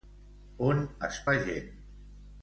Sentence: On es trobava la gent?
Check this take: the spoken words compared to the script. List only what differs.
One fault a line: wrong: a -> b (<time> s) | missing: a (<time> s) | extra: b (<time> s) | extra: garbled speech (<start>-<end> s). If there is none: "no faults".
missing: trobava (1.2 s)